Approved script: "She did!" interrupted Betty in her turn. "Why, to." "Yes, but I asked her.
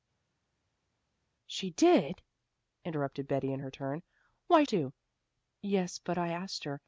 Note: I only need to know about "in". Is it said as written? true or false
true